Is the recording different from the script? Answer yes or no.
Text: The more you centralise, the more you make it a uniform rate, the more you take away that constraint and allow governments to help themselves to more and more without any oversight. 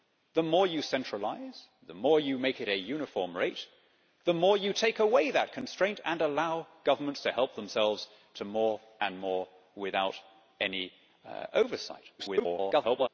yes